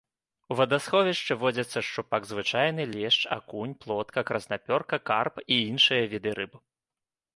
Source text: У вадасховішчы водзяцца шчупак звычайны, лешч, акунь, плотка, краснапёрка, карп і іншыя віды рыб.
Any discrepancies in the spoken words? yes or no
no